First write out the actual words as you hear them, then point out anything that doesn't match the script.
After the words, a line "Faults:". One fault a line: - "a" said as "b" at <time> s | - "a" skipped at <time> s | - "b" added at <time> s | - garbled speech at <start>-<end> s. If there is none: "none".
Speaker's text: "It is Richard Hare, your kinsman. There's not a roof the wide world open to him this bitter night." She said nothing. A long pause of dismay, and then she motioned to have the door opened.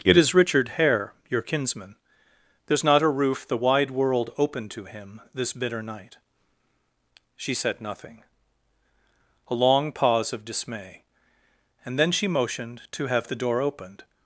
"It is Richard Hare, your kinsman. There's not a roof the wide world open to him this bitter night." She said nothing. A long pause of dismay, and then she motioned to have the door opened.
Faults:
none